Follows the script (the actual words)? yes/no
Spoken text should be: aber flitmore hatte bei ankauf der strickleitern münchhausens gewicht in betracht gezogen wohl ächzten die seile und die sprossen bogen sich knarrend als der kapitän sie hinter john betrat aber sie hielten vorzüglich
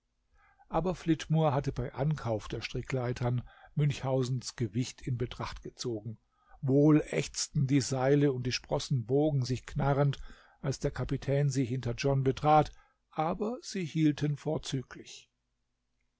yes